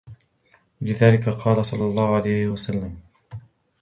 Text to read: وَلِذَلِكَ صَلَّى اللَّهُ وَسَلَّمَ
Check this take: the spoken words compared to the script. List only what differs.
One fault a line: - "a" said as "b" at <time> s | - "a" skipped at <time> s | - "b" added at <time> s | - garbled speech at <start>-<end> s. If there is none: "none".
- "قَالَ" added at 1.3 s
- "عَلَيْهِ" added at 2.2 s